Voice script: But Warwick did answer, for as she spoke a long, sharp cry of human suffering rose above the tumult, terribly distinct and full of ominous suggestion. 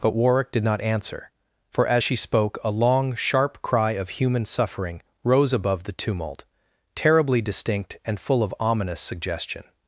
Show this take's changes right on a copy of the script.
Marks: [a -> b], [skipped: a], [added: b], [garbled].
But Warwick did [added: not] answer, for as she spoke a long, sharp cry of human suffering rose above the tumult, terribly distinct and full of ominous suggestion.